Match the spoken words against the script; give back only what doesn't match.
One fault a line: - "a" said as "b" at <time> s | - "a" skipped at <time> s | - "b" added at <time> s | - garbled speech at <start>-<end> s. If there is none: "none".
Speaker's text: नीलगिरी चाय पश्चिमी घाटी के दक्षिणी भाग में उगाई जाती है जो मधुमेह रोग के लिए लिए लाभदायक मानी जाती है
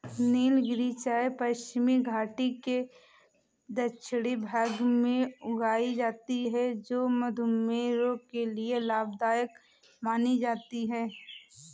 - "लिए" skipped at 8.8 s